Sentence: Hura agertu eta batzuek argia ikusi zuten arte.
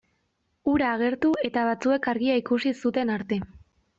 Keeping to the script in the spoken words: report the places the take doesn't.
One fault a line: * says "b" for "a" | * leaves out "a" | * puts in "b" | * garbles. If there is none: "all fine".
all fine